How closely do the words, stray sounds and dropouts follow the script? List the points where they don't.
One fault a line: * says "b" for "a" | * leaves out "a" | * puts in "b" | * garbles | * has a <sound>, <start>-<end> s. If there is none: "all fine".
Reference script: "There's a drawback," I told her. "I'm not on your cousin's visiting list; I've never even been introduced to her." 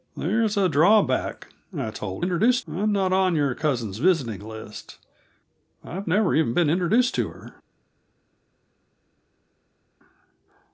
* says "introduced" for "her"